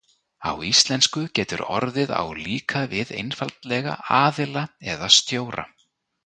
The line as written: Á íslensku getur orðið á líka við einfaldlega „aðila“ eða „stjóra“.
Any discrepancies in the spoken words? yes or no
no